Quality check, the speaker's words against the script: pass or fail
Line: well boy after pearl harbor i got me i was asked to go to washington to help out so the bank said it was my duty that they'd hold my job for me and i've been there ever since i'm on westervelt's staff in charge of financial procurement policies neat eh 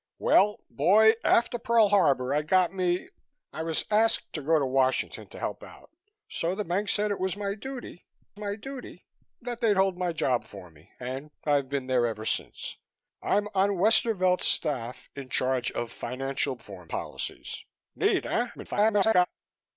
fail